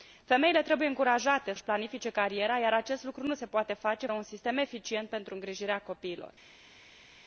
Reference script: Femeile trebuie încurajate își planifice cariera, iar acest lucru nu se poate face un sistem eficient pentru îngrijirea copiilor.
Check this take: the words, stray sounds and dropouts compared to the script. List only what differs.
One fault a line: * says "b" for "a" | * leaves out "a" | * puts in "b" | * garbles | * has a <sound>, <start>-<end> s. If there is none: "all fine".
all fine